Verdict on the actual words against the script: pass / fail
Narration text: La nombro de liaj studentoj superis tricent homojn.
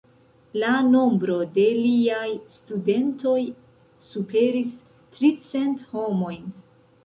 pass